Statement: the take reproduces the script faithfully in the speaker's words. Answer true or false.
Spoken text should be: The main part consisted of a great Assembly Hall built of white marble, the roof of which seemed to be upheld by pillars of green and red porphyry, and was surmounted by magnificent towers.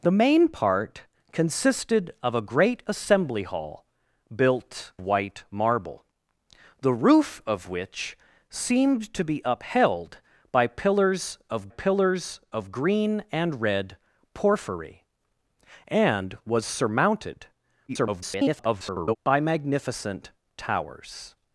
false